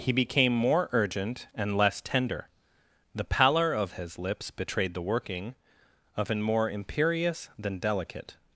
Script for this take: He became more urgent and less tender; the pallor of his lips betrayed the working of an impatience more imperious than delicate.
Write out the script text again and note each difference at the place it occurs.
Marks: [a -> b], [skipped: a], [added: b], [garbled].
He became more urgent and less tender; the pallor of his lips betrayed the working of an [skipped: impatience] more imperious than delicate.